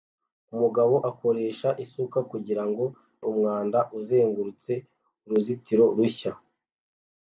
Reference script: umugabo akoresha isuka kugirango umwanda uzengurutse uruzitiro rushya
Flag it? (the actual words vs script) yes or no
no